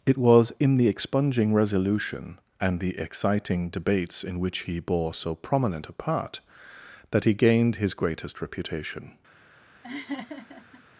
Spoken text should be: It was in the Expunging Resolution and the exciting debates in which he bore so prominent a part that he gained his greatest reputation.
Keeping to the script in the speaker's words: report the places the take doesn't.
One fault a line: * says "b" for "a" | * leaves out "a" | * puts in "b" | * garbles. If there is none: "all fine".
all fine